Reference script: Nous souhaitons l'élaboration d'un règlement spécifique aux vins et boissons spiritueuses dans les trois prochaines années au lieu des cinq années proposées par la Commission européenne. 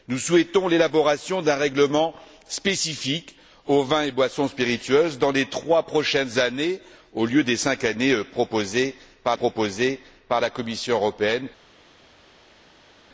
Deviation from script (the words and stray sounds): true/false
true